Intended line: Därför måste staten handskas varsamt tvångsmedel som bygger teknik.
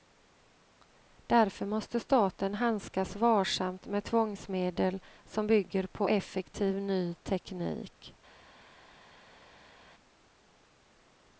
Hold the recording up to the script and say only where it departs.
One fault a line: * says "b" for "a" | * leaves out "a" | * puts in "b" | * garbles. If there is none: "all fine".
* puts in "med"
* puts in "på effektiv ny"